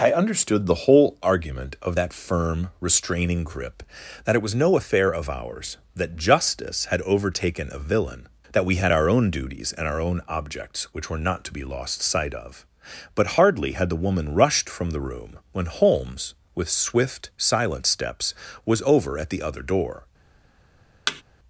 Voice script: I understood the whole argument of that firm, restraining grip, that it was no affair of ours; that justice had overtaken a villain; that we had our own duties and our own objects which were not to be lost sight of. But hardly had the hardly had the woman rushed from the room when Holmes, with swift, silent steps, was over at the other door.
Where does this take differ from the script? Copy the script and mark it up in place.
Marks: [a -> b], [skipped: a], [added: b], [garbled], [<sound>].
I understood the whole argument of that firm, restraining grip, that it was no affair of ours; that justice had overtaken a villain; that we had our own duties and our own objects which were not to be lost sight of. But hardly had the [skipped: hardly had the] woman rushed from the room when Holmes, with swift, silent steps, was over at the other door. [thud]